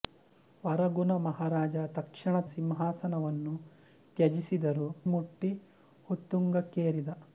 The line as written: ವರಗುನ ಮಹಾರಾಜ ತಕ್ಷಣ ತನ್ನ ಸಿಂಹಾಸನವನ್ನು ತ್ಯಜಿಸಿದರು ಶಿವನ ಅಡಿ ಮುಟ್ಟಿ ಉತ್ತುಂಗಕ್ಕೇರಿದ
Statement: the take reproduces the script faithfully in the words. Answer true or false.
false